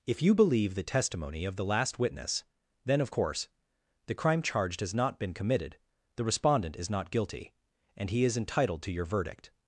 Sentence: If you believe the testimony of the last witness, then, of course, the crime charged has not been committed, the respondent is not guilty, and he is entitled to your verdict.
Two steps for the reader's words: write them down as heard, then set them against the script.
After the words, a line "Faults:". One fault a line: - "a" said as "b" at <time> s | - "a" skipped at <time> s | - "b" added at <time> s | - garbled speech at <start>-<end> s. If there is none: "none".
If you believe the testimony of the last witness, then, of course, the crime charged has not been committed, the respondent is not guilty, and he is entitled to your verdict.
Faults:
none